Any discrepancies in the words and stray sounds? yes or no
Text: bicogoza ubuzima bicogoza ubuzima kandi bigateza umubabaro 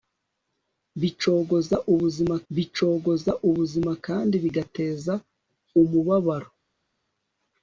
no